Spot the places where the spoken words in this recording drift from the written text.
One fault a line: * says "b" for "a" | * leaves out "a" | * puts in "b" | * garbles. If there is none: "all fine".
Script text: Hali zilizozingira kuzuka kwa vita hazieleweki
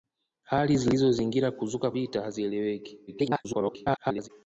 * leaves out "kwa"
* garbles